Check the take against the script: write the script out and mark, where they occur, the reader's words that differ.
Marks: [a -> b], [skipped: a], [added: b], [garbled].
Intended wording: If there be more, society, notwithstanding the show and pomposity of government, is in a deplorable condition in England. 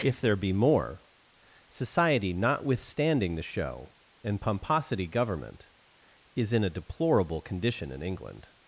If there be more, society, notwithstanding the show and pomposity [skipped: of] government, is in a deplorable condition in England.